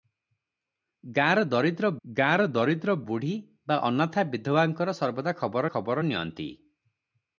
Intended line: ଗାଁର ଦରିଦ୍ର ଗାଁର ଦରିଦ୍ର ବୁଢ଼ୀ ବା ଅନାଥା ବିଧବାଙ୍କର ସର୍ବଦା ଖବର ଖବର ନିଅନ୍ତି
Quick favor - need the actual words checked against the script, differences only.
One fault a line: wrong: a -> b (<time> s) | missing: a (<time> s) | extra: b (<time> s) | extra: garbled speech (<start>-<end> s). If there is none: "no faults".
no faults